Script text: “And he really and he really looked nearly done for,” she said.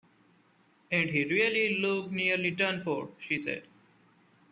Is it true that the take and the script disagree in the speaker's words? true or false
true